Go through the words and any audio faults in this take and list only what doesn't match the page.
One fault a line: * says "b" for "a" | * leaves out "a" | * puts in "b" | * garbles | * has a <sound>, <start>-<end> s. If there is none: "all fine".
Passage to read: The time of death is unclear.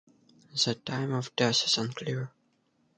all fine